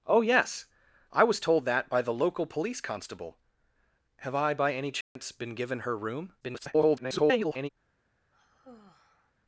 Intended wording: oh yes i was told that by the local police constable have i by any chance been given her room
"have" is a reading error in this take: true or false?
false